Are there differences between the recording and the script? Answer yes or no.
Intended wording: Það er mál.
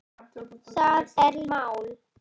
no